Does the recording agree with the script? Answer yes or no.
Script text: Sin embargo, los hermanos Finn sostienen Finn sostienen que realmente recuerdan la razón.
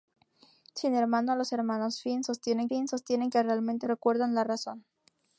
yes